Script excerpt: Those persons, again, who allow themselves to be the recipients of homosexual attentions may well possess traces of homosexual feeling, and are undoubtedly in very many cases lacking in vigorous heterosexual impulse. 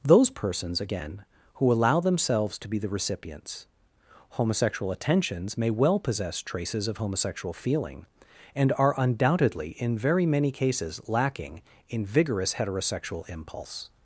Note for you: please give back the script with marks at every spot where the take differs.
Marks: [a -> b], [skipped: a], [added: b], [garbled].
Those persons, again, who allow themselves to be the recipients [skipped: of] homosexual attentions may well possess traces of homosexual feeling, and are undoubtedly in very many cases lacking in vigorous heterosexual impulse.